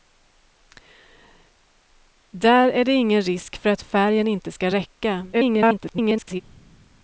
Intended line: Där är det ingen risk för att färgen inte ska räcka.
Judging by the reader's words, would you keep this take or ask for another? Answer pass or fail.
fail